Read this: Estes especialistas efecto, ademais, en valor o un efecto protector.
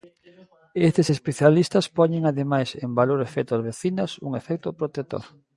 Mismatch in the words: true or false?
true